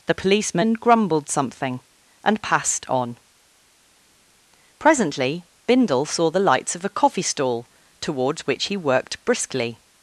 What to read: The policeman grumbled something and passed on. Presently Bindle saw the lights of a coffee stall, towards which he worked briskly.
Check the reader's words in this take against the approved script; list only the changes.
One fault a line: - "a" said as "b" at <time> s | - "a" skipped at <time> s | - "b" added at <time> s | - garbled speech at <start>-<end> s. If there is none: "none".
none